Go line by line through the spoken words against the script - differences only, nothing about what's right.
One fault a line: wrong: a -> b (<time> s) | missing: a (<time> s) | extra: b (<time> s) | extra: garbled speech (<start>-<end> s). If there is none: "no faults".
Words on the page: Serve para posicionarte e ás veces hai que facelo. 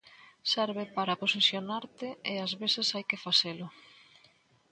no faults